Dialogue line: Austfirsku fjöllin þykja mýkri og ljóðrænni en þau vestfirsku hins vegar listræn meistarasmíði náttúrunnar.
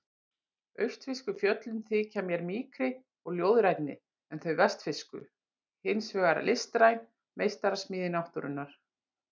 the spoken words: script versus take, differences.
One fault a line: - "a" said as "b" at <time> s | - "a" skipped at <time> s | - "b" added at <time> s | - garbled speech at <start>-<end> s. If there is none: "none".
- "mér" added at 2.3 s